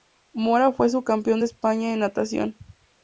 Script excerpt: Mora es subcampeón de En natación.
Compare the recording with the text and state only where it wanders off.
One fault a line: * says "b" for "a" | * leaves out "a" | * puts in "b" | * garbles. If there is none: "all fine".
* says "fue" for "es"
* puts in "España"